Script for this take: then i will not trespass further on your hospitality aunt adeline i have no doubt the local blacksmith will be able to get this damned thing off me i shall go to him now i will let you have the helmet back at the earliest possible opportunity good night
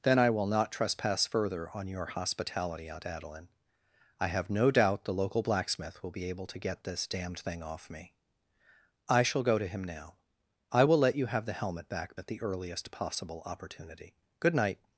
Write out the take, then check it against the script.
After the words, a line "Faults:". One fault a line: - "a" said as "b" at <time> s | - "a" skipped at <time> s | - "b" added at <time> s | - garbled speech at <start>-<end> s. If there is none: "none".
then i will not trespass further on your hospitality aunt adeline i have no doubt the local blacksmith will be able to get this damned thing off me i shall go to him now i will let you have the helmet back at the earliest possible opportunity good night
Faults:
none